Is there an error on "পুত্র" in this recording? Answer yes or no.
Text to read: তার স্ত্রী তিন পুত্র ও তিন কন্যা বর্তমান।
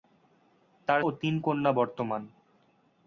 yes